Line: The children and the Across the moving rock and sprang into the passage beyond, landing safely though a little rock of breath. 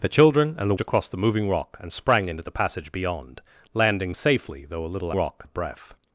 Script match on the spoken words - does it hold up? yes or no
yes